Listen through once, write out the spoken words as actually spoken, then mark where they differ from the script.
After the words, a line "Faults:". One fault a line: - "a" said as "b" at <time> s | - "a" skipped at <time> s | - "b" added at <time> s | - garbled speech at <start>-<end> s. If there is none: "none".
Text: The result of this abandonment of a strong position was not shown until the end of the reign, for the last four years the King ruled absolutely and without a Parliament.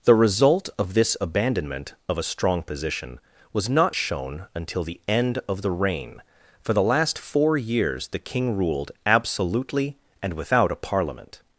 The result of this abandonment of a strong position was not shown until the end of the reign, for the last four years the King ruled absolutely and without a Parliament.
Faults:
none